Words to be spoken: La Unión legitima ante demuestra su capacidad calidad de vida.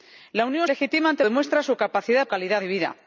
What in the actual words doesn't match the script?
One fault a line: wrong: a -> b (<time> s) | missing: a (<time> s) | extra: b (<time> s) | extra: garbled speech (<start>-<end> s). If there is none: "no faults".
no faults